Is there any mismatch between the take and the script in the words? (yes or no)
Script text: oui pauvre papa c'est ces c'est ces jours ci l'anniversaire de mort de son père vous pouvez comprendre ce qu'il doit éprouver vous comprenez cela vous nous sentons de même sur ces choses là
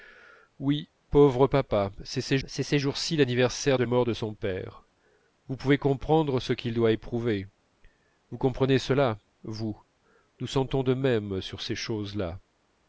no